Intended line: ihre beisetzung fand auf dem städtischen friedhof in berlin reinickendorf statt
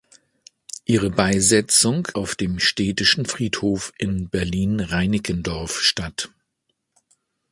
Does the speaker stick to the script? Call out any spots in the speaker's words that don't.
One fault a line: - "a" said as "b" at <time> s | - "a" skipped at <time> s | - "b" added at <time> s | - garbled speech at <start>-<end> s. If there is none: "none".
- "fand" skipped at 2.1 s